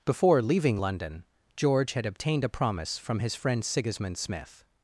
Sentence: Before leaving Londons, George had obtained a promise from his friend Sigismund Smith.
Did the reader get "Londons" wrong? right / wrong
wrong